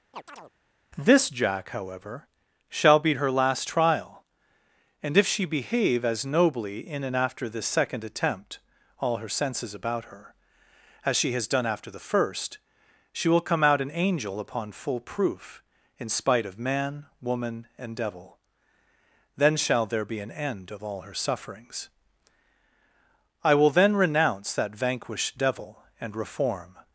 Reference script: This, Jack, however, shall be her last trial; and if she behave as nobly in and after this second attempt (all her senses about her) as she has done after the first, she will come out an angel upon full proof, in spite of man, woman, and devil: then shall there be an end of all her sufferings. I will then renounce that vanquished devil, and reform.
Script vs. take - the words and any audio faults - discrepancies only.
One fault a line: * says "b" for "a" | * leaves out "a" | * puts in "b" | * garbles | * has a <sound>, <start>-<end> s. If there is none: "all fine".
* has a chirp, 0.1-0.5 s